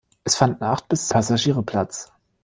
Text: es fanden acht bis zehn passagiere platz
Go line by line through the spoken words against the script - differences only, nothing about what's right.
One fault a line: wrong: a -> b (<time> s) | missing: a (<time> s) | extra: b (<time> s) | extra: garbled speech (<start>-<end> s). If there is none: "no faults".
missing: zehn (1.1 s)